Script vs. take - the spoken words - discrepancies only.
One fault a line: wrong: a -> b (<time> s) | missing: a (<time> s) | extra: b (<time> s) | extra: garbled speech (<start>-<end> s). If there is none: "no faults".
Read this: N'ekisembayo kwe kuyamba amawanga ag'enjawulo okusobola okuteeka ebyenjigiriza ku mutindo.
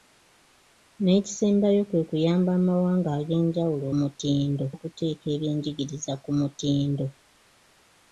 wrong: okusobola -> mutindo (4.0 s)